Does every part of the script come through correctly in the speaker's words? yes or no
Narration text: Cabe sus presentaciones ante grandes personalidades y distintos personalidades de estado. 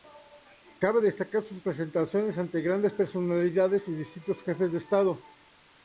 no